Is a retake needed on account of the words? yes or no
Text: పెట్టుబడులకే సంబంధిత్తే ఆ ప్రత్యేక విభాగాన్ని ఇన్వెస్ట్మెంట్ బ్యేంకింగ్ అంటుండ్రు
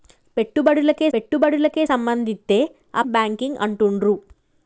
yes